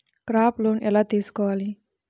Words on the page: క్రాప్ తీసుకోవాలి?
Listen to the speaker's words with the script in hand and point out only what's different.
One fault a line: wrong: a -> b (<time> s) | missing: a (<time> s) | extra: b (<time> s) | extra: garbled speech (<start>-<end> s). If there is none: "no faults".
extra: లోన్ ఎలా (0.6 s)